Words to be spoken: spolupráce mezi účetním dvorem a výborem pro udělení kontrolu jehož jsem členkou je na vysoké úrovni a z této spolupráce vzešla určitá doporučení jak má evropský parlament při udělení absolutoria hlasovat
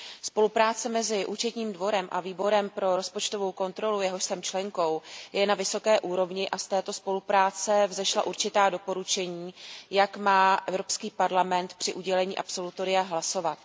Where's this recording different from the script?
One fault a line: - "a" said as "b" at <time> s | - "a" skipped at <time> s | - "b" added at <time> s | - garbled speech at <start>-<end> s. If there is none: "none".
- "udělení" said as "rozpočtovou" at 2.9 s